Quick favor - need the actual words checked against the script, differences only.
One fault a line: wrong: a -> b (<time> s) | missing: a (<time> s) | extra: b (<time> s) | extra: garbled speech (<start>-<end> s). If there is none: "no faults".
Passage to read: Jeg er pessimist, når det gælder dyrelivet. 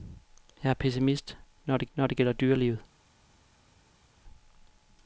extra: når det (1.9 s)